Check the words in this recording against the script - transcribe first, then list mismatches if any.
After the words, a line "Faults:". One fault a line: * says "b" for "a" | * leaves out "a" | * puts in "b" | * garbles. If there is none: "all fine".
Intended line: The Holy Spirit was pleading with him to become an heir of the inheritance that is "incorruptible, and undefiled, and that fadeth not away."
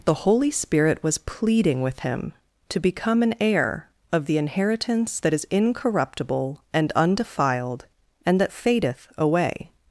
The Holy Spirit was pleading with him to become an heir of the inheritance that is "incorruptible, and undefiled, and that fadeth away."
Faults:
* leaves out "not"